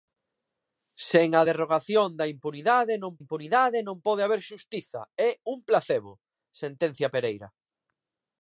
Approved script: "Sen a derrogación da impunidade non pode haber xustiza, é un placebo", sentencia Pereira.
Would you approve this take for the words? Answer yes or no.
no